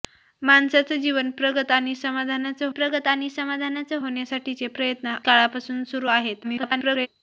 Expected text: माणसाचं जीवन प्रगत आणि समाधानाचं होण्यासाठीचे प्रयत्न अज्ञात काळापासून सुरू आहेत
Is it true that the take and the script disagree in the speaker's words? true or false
true